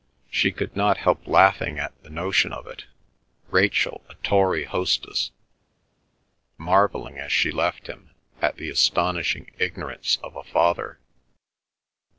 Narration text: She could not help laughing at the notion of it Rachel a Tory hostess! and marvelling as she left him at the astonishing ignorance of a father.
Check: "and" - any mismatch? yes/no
yes